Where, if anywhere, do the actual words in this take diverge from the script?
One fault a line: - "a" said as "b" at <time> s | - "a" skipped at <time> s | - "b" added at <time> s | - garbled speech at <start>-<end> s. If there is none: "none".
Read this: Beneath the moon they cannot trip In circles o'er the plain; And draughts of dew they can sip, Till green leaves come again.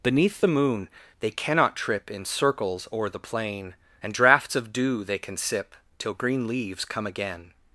none